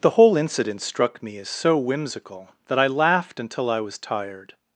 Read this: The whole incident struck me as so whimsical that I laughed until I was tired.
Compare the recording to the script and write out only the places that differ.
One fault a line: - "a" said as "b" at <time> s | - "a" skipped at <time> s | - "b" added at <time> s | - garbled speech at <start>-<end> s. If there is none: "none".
none